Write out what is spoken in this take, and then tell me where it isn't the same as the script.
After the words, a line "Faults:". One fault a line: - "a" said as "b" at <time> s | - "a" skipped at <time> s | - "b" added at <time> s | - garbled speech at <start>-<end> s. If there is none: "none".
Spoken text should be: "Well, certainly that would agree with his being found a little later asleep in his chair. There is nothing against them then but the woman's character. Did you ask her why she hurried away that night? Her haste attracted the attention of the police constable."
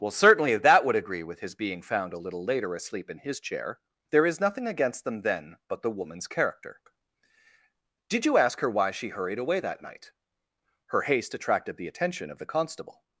"Well, certainly that would agree with his being found a little later asleep in his chair. There is nothing against them then but the woman's character. Did you ask her why she hurried away that night? Her haste attracted the attention of the constable."
Faults:
- "police" skipped at 12.5 s